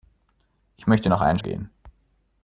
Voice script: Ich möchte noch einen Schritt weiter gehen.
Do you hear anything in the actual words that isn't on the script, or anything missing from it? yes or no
yes